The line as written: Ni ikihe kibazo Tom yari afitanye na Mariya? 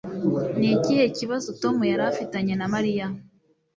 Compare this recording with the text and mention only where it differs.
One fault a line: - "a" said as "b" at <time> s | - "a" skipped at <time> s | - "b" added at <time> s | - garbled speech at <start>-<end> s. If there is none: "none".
none